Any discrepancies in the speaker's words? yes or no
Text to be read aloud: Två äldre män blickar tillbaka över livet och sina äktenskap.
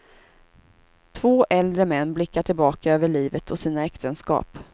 no